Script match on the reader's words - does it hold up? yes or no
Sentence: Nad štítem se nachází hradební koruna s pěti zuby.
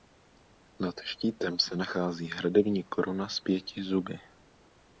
yes